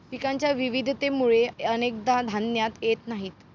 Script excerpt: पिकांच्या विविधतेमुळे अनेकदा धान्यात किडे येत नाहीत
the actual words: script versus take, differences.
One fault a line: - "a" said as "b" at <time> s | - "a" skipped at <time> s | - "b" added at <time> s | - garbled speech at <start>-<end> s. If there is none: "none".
- "किडे" skipped at 2.8 s